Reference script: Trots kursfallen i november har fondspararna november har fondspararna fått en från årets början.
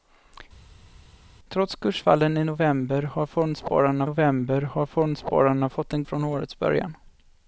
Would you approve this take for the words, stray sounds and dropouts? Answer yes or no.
yes